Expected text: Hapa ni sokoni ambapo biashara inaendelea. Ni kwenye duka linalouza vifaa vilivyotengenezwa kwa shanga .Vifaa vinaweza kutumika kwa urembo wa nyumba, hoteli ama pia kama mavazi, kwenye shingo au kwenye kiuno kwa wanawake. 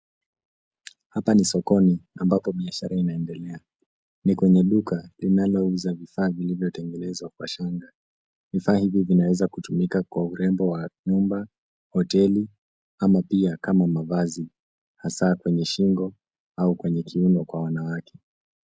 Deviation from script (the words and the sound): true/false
true